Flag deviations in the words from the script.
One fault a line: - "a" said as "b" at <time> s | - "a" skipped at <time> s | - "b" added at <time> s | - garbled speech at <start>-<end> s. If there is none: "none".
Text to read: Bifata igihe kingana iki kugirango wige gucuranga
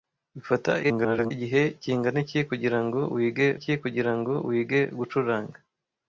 - garbled speech at 0.8-1.3 s
- "iki kugirango wige" added at 3.6 s